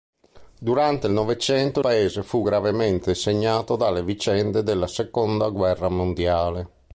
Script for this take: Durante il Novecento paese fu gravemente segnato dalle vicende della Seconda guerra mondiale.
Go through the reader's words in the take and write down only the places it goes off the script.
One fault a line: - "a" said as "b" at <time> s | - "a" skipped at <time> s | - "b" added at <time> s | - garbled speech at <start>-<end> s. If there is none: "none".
none